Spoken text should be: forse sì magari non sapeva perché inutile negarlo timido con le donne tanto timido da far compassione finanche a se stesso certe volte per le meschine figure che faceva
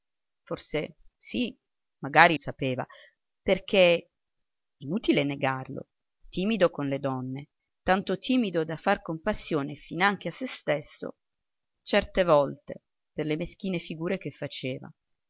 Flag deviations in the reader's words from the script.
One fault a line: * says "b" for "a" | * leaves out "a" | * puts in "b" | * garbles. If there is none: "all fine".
* leaves out "non"